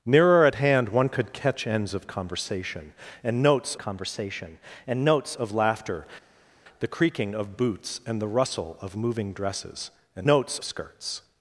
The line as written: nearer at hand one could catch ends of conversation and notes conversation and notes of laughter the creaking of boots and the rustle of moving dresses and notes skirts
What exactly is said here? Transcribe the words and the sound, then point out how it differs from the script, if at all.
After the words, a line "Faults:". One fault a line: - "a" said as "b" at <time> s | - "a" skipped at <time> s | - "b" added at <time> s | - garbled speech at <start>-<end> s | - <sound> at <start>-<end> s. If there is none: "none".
nearer at hand one could catch ends of conversation and notes conversation and notes of laughter the creaking of boots and the rustle of moving dresses and notes skirts
Faults:
none